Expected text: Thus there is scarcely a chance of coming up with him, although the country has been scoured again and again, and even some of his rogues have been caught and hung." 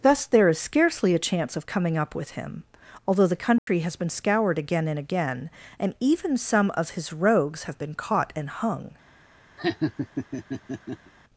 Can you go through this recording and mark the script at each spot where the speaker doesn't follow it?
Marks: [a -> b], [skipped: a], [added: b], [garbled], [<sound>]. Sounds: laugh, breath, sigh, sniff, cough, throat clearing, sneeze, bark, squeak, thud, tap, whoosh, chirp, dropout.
Thus there is scarcely a chance of coming up with him, although the country [dropout] has been scoured again and again, and even some of his rogues have been caught and hung." [laugh]